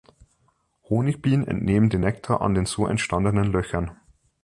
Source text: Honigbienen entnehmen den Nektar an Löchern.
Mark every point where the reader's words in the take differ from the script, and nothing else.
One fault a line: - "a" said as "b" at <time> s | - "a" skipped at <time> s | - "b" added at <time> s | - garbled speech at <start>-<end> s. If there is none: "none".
- "den so entstandenen" added at 2.5 s